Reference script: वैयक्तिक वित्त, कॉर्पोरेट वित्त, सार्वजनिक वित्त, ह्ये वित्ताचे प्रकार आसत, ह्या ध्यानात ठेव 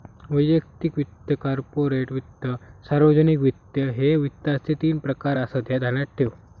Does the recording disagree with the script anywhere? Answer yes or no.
yes